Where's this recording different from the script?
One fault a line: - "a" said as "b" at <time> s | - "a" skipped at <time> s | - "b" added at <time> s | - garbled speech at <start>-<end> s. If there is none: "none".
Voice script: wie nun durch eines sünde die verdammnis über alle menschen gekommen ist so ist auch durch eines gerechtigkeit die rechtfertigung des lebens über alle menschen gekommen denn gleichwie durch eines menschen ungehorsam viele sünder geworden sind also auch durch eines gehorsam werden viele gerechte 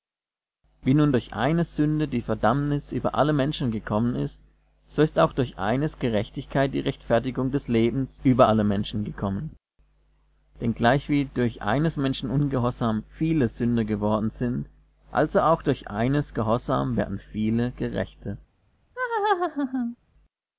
none